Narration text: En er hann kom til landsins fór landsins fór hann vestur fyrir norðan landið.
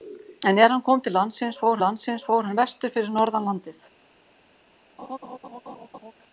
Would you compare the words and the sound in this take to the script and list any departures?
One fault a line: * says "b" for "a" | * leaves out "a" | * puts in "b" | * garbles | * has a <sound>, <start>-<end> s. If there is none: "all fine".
* has a laugh, 5.0-6.1 s